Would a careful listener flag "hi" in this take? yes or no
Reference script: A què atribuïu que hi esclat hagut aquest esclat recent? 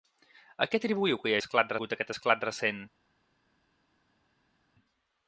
no